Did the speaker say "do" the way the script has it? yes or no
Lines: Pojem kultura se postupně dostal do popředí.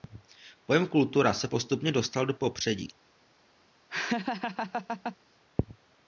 yes